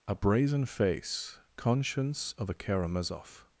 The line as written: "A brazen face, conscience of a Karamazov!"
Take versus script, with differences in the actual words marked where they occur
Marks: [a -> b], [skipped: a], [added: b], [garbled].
"A brazen face, conscience of a Karamazov!"